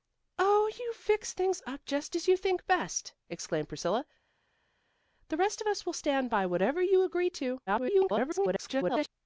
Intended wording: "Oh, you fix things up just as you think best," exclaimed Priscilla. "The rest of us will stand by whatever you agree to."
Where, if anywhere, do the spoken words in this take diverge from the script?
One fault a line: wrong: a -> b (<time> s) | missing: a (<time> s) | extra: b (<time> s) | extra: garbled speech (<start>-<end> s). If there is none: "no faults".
extra: garbled speech (7.7-9.1 s)